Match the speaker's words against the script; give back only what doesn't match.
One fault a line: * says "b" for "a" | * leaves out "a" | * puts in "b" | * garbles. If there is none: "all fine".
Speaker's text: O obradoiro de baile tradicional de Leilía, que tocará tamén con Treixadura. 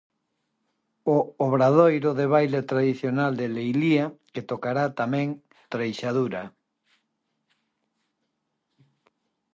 * leaves out "con"